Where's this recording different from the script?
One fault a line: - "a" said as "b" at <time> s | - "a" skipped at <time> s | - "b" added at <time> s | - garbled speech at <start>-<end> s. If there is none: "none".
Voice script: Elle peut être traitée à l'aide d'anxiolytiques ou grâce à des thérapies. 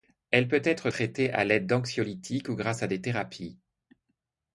none